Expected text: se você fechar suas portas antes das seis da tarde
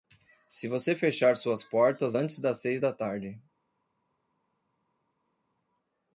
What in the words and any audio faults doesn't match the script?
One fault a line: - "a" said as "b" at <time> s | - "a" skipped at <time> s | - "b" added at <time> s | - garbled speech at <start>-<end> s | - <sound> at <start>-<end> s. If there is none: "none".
none